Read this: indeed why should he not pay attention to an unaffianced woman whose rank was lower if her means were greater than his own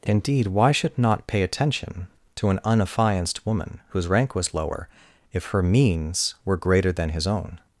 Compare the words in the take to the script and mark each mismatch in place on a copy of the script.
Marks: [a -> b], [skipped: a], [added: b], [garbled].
indeed why should [skipped: he] not pay attention to an unaffianced woman whose rank was lower if her means were greater than his own